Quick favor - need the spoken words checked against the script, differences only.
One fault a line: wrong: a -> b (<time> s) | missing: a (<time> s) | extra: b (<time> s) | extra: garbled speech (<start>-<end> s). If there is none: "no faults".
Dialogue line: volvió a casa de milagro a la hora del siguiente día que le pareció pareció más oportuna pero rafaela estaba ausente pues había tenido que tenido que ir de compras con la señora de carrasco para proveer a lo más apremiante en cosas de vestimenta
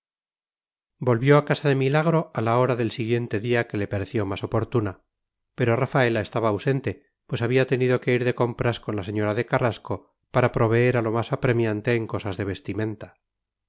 missing: pareció (4.2 s)
missing: tenido que (8.1 s)